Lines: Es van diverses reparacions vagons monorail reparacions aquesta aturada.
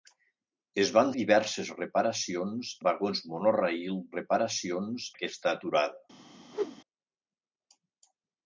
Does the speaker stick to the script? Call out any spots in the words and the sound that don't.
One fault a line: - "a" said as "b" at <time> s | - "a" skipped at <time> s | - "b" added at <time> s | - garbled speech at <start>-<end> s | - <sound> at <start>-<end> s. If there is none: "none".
- whoosh at 6.5-6.8 s